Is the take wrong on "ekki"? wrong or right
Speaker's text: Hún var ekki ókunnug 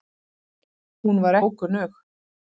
wrong